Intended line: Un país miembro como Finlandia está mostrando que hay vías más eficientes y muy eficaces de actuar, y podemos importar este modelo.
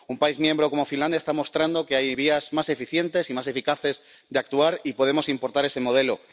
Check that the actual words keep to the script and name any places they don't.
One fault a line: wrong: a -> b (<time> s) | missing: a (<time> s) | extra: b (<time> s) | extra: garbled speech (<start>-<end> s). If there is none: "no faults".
wrong: muy -> más (3.3 s)
wrong: este -> ese (5.6 s)